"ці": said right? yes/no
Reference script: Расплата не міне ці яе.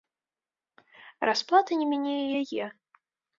no